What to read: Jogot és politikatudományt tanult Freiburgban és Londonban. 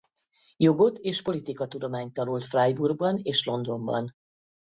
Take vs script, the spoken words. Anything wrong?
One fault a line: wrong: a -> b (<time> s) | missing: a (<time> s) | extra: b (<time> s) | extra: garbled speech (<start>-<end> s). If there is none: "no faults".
no faults